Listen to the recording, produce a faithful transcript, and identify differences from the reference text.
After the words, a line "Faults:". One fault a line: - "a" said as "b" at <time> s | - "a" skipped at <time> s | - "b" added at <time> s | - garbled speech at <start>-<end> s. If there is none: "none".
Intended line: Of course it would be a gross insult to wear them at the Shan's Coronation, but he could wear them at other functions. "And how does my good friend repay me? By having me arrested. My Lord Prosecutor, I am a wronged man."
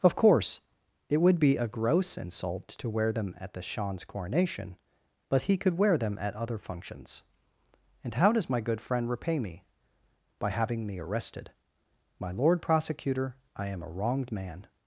Of course it would be a gross insult to wear them at the Shan's Coronation, but he could wear them at other functions. "And how does my good friend repay me? By having me arrested. My Lord Prosecutor, I am a wronged man."
Faults:
none